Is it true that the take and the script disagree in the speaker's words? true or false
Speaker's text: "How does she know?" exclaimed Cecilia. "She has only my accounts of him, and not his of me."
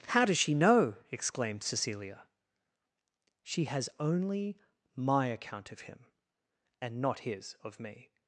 true